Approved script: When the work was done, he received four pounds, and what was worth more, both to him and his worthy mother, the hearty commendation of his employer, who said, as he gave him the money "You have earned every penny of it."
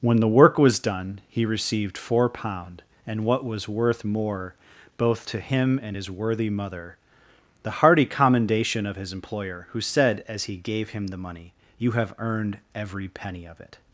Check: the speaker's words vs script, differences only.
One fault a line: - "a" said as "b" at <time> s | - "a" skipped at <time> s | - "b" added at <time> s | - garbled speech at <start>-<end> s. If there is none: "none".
- "pounds" said as "pound" at 2.3 s